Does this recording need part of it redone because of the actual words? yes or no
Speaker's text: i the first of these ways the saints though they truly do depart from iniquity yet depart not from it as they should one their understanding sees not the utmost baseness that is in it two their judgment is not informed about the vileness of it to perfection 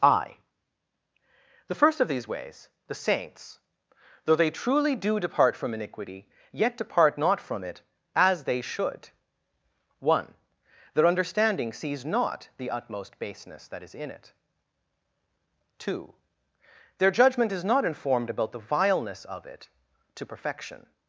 no